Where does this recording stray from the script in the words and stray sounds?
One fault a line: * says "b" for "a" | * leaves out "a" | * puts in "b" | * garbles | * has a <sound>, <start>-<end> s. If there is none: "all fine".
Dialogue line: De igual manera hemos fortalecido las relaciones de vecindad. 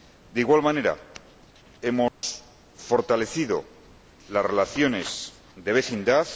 * has a dropout, 2.1-2.2 s